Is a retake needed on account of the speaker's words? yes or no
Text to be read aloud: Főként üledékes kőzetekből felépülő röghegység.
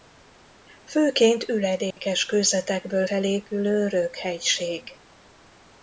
no